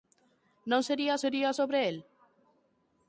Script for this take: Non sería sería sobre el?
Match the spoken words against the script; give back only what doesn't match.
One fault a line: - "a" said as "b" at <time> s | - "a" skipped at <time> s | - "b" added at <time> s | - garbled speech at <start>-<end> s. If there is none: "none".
none